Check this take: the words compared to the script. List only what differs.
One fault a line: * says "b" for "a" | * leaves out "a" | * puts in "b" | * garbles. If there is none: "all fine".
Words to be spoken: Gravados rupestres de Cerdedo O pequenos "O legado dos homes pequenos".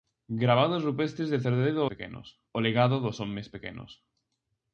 all fine